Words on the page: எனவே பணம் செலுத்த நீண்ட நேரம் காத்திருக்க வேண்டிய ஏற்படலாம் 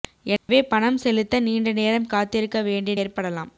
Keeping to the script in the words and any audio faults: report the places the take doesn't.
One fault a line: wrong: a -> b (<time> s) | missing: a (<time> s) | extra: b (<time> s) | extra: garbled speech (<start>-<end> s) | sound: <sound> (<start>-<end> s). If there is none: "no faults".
sound: dropout (0.4-0.5 s)